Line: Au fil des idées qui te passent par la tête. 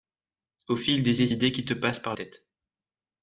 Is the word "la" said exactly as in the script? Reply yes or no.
no